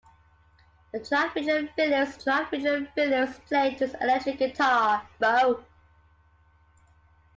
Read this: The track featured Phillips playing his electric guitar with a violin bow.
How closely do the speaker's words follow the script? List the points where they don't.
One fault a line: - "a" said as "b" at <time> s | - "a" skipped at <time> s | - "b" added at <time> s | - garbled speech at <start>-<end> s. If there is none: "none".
- "track featured Phillips" added at 2.2 s
- "with a violin" skipped at 5.1 s